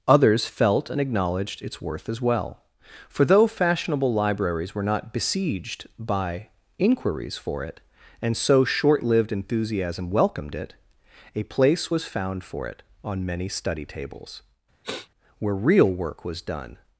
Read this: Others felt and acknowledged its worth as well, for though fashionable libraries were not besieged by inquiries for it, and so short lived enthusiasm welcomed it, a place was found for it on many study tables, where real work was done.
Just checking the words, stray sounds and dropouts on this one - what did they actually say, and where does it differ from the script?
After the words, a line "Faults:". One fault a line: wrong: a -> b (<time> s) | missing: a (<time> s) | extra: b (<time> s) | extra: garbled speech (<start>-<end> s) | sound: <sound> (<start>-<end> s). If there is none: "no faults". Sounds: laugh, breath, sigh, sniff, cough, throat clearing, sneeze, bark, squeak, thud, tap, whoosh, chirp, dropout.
Others felt and acknowledged its worth as well, for though fashionable libraries were not besieged by inquiries for it, and so short lived enthusiasm welcomed it, a place was found for it on many study tables, where real work was done.
Faults:
sound: sniff (14.8-15.1 s)